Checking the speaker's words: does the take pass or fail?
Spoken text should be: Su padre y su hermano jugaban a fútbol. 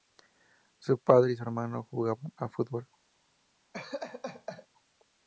pass